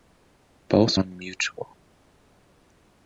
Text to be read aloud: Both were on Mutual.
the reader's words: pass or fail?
fail